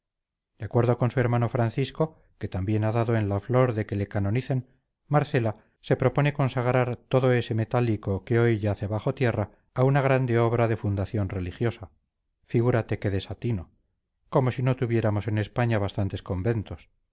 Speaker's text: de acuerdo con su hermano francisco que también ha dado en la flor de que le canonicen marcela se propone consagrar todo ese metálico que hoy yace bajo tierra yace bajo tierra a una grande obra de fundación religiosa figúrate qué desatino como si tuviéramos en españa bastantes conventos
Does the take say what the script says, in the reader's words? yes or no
no